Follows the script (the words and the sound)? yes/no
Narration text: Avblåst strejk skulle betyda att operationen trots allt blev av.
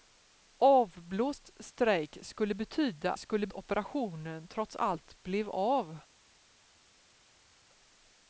no